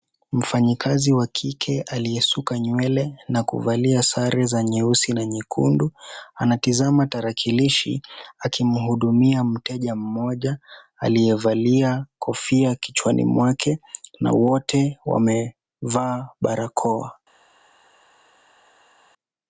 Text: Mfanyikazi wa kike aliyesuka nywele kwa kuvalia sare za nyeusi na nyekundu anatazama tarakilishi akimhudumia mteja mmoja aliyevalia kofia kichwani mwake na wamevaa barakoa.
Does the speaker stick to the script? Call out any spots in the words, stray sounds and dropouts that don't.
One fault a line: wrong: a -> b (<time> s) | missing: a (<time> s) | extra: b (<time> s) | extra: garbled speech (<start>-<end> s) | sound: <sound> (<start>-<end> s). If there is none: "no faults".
wrong: kwa -> na (3.3 s)
extra: wote (14.3 s)